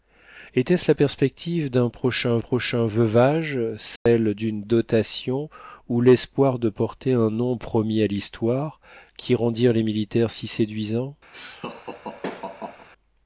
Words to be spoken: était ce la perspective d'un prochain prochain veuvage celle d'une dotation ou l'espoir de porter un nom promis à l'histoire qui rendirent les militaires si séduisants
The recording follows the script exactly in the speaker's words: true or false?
true